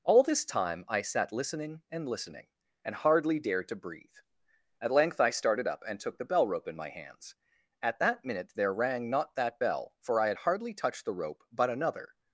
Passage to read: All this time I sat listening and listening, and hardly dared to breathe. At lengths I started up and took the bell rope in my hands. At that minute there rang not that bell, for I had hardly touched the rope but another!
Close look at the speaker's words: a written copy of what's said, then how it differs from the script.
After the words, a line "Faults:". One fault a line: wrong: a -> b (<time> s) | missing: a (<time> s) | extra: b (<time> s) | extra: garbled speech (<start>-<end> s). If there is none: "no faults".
All this time I sat listening and listening, and hardly dared to breathe. At length I started up and took the bell rope in my hands. At that minute there rang not that bell, for I had hardly touched the rope but another!
Faults:
wrong: lengths -> length (4.9 s)